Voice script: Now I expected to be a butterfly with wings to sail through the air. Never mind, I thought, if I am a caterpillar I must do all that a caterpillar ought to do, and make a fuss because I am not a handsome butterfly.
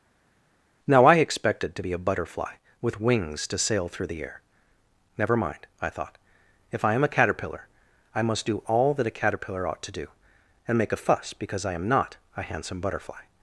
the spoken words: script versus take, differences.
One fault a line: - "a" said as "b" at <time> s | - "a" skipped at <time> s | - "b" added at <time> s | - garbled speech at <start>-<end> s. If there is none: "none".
none